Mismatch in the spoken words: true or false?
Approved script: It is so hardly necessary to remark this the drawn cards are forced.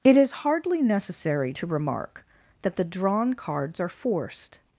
true